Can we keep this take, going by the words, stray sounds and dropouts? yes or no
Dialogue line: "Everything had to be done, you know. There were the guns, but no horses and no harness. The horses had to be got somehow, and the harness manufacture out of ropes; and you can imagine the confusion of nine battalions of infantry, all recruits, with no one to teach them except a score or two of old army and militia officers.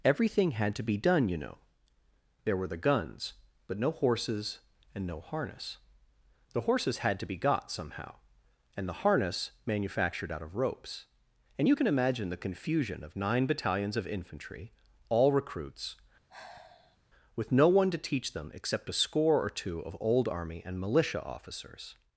no